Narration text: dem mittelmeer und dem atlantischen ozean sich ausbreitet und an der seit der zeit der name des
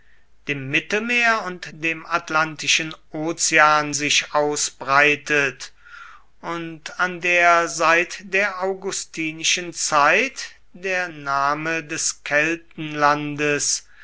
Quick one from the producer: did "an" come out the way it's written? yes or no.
yes